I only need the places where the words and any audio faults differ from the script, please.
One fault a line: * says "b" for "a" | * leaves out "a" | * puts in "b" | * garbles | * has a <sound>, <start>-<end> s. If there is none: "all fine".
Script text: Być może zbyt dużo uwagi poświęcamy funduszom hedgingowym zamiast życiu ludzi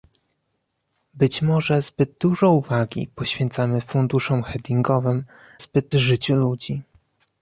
* says "zbyt" for "zamiast"